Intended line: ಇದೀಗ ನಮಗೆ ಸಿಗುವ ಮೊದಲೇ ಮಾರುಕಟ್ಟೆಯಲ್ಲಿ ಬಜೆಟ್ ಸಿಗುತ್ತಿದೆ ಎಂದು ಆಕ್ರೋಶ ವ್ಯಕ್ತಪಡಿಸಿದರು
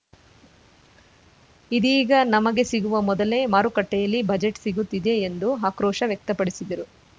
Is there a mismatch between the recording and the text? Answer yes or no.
no